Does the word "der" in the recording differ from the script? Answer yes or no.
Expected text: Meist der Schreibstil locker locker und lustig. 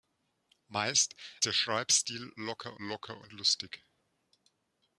no